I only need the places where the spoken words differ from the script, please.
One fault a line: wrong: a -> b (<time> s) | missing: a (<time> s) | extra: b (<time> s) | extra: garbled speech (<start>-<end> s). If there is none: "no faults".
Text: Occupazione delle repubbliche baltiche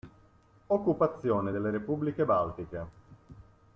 no faults